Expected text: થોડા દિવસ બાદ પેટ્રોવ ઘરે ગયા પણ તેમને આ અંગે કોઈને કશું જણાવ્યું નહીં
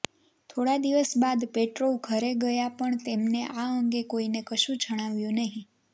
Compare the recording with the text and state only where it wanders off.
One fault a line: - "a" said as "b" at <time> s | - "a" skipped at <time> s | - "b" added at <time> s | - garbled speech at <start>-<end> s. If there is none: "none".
none